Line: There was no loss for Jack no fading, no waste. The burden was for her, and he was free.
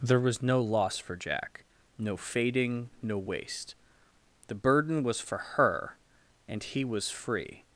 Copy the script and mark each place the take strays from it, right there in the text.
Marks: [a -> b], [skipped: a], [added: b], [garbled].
There was no loss for Jack no fading, no waste. The burden was for her, and he was free.